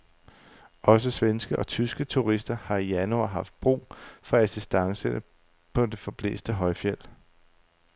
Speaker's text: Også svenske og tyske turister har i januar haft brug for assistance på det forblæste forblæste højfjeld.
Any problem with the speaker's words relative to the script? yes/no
yes